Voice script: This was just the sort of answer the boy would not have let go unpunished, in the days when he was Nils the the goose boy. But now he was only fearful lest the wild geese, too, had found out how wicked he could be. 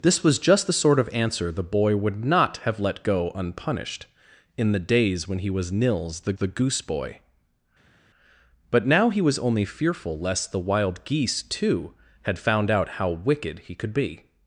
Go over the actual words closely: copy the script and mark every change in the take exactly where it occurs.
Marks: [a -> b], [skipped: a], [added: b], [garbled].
This was just the sort of answer the boy would not have let go unpunished, in the days when he was Nils the the goose boy. But now he was only fearful lest the wild geese, too, had found out how wicked he could be.